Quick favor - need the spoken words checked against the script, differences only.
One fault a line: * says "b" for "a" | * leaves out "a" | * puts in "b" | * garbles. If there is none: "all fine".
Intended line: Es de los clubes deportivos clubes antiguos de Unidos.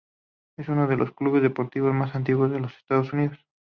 * puts in "uno"
* says "más" for "clubes"
* puts in "los Estados"